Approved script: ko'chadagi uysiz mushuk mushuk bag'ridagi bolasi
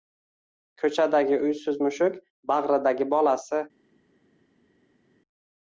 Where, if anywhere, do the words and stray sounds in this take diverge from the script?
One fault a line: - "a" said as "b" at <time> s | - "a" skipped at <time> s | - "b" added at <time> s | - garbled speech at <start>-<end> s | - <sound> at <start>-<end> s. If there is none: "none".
- "mushuk" skipped at 2.2 s